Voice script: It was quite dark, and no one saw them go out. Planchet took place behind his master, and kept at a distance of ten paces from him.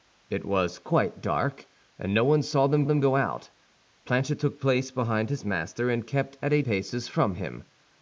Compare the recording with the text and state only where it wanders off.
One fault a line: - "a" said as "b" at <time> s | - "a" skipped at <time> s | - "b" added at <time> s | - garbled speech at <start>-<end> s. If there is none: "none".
- "them" added at 2.8 s
- "distance of ten" skipped at 6.6 s